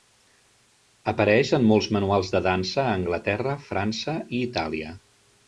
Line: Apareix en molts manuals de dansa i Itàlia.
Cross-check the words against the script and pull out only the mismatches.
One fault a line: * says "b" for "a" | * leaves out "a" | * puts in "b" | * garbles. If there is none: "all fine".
* puts in "a Anglaterra França"